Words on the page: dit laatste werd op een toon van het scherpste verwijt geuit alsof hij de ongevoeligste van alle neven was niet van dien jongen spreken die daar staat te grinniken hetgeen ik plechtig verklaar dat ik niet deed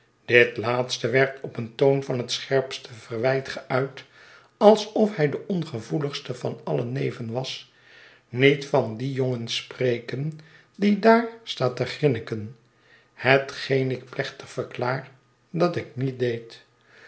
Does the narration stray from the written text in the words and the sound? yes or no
no